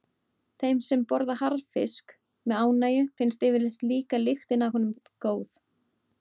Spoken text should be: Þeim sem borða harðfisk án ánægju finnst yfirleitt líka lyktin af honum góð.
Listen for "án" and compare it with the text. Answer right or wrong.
wrong